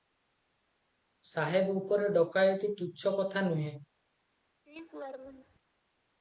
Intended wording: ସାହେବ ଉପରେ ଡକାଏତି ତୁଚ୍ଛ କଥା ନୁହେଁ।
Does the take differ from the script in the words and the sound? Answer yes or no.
yes